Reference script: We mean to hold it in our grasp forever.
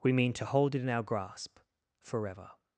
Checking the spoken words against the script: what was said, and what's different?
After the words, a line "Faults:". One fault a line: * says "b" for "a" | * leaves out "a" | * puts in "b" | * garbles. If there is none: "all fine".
We mean to hold it in our grasp forever.
Faults:
all fine